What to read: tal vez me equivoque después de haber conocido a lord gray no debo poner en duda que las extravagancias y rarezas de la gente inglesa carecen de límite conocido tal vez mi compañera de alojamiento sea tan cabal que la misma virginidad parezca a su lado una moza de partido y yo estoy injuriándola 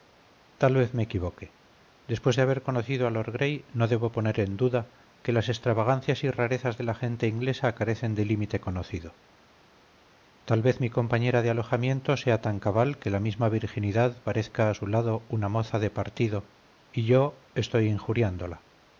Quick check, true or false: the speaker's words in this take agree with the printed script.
true